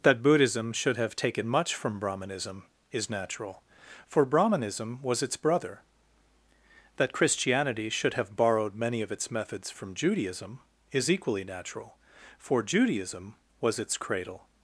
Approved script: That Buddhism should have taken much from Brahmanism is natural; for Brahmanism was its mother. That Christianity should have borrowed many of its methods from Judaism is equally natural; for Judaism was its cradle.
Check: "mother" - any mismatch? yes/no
yes